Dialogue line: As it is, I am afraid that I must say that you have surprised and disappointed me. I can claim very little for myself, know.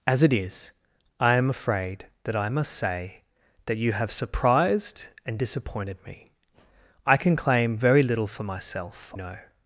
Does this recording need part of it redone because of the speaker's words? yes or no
no